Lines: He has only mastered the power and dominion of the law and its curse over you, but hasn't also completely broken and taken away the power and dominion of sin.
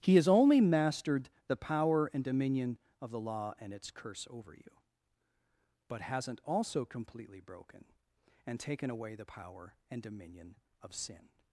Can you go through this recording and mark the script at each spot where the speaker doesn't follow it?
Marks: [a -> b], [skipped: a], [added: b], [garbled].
He has only mastered the power and dominion of the law and its curse over you, but hasn't also completely broken and taken away the power and dominion of sin.